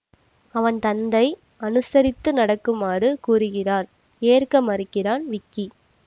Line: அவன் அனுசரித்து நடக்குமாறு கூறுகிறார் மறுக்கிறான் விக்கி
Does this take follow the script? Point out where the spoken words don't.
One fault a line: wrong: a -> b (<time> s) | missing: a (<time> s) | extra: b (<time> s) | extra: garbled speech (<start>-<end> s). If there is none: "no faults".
extra: தந்தை (0.8 s)
extra: ஏற்க (4.2 s)